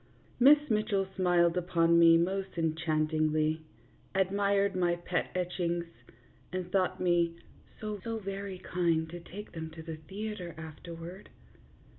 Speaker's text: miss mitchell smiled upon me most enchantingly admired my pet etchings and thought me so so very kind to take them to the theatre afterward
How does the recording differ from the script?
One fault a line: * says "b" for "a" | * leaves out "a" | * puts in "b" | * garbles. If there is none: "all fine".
all fine